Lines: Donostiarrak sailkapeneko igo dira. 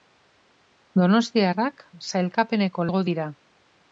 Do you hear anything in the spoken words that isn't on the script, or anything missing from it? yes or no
no